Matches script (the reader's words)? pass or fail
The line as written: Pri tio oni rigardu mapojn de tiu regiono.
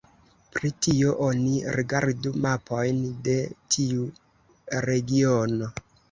pass